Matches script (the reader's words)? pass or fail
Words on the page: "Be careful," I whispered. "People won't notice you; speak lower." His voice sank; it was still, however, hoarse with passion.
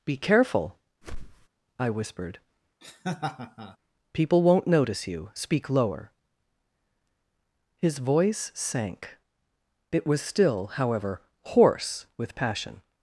pass